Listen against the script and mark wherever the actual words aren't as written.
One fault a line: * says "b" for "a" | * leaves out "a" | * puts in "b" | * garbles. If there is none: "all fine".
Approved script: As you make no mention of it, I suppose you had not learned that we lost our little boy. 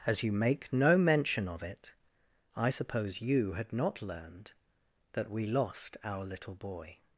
all fine